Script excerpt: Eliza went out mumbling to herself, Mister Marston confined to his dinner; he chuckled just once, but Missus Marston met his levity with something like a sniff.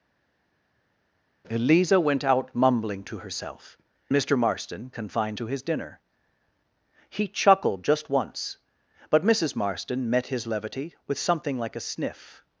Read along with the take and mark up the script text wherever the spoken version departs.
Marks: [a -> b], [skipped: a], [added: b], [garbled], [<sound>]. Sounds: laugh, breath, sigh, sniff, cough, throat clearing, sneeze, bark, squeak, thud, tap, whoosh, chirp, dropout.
Eliza went out mumbling to herself, Mister Marston confined to his dinner; he chuckled just once, but Missus Marston met his levity with something like a sniff.